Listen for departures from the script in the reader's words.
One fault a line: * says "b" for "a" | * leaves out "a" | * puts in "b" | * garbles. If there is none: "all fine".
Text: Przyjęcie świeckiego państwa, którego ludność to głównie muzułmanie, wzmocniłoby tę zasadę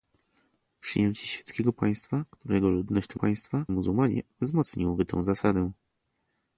* says "państwa" for "głównie"